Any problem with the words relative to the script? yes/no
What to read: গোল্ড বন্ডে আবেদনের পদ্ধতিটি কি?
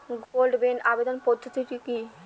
no